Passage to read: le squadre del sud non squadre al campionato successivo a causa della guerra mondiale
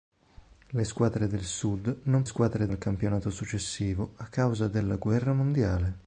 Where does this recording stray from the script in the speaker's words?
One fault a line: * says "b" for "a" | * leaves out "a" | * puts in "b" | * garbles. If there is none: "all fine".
all fine